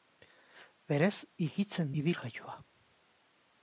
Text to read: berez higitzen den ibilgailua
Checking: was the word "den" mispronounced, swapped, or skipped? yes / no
yes